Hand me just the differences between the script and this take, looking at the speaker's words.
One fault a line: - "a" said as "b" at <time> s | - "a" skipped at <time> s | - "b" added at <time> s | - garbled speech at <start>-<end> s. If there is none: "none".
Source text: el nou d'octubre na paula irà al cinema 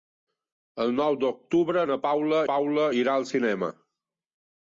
- "paula" added at 2.5 s